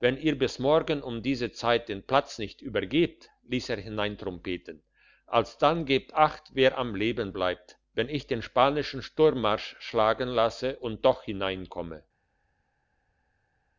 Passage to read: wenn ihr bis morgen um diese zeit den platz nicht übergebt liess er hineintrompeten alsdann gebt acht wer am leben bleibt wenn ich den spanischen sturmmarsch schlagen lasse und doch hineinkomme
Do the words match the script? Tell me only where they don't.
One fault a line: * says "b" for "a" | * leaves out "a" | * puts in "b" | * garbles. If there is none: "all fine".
all fine